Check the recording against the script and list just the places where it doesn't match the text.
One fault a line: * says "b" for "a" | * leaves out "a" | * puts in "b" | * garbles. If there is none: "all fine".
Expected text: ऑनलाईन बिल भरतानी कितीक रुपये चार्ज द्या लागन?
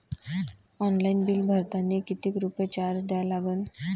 all fine